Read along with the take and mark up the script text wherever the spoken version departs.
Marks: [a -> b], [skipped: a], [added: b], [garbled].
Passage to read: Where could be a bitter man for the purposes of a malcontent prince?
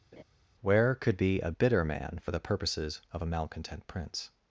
Where could be a bitter man for the purposes of a malcontent prince?